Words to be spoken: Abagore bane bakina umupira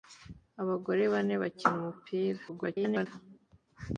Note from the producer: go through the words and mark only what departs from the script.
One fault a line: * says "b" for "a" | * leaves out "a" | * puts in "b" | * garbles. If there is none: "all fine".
* garbles